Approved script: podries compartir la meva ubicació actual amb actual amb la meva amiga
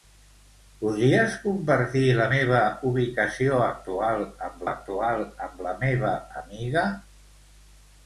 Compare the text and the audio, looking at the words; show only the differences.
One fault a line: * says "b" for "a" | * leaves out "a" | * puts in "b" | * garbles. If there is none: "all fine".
all fine